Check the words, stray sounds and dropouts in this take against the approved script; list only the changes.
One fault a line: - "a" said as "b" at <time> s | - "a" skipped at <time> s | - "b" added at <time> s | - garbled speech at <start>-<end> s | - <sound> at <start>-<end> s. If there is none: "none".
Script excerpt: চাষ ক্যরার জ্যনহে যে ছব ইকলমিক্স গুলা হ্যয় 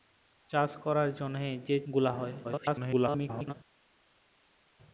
- "ছব ইকলমিক্স" skipped at 1.8 s
- garbled speech at 2.4-3.5 s